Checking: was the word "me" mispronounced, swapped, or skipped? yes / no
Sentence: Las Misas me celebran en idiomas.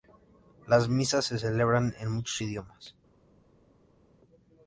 yes